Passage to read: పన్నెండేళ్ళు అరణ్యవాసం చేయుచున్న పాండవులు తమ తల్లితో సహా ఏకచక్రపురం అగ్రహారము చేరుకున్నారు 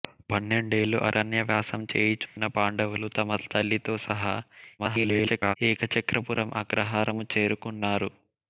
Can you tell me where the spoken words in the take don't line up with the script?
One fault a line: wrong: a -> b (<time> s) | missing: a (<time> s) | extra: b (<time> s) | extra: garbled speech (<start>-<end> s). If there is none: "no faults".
extra: garbled speech (4.8-5.6 s)